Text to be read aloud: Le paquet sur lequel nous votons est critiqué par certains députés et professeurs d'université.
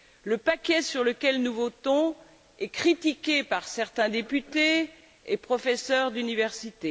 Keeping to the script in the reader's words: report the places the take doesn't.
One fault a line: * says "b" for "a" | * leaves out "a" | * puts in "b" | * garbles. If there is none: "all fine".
all fine